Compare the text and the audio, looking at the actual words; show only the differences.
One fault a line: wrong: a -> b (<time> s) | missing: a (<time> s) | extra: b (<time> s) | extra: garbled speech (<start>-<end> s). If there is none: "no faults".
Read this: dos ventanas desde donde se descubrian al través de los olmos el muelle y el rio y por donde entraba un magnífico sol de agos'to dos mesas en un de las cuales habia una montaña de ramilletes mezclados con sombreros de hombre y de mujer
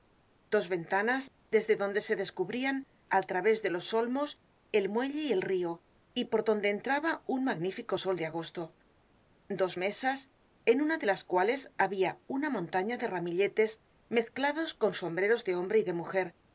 wrong: un -> una (10.8 s)